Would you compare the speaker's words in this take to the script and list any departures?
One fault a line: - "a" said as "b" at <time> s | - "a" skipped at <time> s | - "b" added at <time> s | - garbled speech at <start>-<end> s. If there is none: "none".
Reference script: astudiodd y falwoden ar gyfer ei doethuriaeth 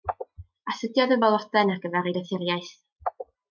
none